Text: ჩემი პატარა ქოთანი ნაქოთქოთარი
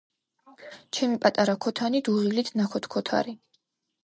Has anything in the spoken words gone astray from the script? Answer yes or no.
yes